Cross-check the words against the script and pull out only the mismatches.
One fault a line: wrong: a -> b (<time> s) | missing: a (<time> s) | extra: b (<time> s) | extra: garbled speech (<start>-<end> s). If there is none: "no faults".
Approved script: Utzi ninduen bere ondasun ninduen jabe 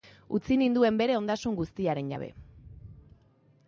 wrong: ninduen -> guztiaren (1.6 s)